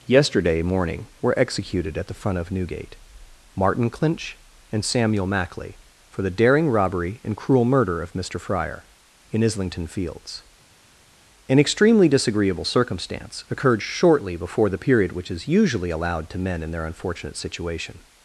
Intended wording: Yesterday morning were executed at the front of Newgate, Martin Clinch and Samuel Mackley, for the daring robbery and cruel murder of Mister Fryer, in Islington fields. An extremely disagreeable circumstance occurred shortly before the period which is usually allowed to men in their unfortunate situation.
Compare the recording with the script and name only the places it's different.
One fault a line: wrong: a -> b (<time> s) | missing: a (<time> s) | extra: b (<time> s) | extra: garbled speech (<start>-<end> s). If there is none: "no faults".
no faults